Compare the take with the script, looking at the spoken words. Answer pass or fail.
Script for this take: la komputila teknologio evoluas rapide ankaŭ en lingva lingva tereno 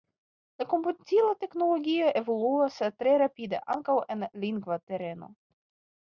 fail